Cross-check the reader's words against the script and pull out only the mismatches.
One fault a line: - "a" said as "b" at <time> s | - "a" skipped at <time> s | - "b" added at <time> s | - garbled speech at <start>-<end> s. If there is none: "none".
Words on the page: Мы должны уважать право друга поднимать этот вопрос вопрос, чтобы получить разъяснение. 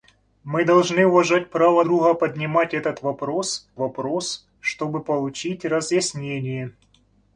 none